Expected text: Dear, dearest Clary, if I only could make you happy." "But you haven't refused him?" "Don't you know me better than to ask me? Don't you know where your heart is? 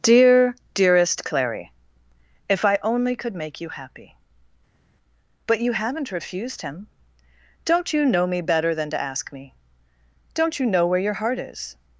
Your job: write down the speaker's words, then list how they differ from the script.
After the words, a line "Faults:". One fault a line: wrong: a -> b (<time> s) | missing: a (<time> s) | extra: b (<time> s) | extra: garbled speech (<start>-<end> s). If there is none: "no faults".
Dear, dearest Clary, if I only could make you happy." "But you haven't refused him?" "Don't you know me better than to ask me? Don't you know where your heart is?
Faults:
no faults